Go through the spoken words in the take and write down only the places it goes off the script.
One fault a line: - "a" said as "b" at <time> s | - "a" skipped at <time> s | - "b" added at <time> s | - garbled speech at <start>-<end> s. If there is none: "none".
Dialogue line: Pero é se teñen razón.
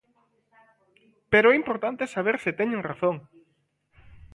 - "importante saber" added at 1.6 s